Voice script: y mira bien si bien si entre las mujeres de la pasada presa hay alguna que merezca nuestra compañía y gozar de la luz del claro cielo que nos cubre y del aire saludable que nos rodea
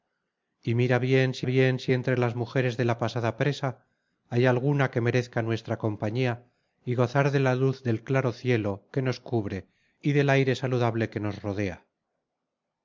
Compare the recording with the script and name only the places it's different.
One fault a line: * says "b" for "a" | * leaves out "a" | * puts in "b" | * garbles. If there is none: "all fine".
all fine